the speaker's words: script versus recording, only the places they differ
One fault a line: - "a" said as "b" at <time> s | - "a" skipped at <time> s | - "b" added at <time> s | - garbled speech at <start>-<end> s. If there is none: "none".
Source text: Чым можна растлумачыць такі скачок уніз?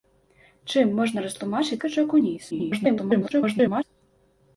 - "такі" skipped at 1.8 s
- garbled speech at 2.5-3.8 s